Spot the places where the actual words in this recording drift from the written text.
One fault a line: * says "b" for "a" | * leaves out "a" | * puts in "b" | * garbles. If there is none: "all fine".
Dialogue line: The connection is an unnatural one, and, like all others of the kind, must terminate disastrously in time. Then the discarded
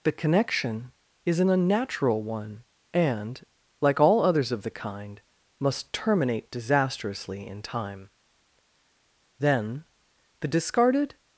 all fine